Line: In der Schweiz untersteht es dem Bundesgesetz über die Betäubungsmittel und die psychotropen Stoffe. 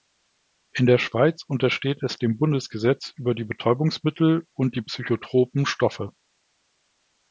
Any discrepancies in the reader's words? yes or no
no